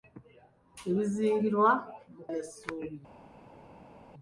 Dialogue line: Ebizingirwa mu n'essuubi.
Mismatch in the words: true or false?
false